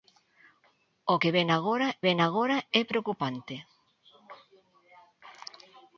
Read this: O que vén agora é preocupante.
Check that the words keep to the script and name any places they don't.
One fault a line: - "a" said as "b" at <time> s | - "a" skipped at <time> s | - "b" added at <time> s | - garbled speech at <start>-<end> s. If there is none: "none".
- "vén agora" added at 2.1 s